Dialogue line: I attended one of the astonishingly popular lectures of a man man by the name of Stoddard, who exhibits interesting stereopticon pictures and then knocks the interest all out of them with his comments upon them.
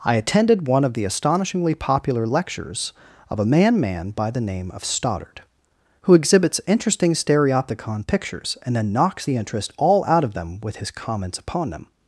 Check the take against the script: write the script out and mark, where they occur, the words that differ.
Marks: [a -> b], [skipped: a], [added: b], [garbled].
I attended one of the astonishingly popular lectures of a man man by the name of Stoddard, who exhibits interesting stereopticon pictures and then knocks the interest all out of them with his comments upon them.